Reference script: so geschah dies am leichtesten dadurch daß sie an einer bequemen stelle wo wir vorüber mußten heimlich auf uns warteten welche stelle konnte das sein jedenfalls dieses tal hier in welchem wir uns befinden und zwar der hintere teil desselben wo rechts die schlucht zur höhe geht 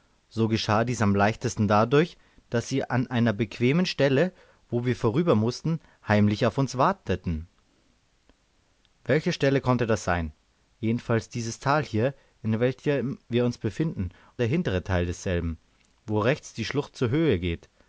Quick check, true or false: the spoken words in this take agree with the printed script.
false